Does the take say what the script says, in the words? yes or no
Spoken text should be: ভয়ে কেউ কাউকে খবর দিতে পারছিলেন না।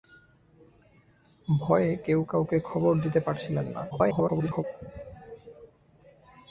no